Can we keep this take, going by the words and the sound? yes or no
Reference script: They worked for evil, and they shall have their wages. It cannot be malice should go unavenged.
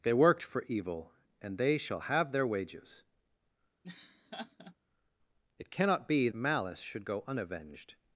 no